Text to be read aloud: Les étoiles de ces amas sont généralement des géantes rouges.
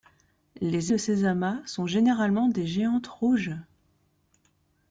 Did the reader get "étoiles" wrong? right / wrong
wrong